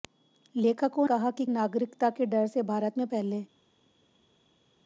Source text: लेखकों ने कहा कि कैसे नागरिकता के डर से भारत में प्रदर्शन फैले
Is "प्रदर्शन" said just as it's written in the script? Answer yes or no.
no